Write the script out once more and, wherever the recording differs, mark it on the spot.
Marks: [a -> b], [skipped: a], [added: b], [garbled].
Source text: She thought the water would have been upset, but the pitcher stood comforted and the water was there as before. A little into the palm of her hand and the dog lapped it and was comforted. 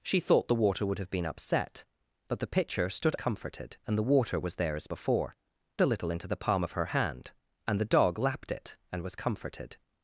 She thought the water would have been upset, but the pitcher stood comforted and the water was there as before. A little into the palm of her hand and the dog lapped it and was comforted.